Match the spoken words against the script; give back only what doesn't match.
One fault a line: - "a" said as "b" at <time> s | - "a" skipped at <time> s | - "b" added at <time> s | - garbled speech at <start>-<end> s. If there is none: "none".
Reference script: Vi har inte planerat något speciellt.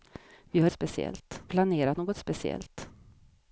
- "inte" said as "speciellt" at 0.7 s